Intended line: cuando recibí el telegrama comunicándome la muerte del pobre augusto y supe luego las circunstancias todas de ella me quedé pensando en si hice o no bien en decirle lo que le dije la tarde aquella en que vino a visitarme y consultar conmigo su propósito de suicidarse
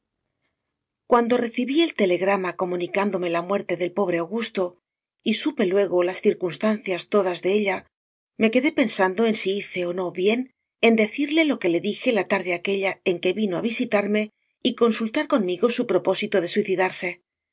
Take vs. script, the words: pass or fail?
pass